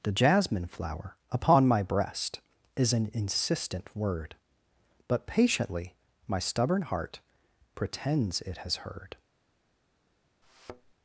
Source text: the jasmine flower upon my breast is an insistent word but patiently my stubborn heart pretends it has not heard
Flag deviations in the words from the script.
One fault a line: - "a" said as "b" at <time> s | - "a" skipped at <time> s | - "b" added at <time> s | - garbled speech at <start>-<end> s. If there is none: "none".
- "not" skipped at 8.8 s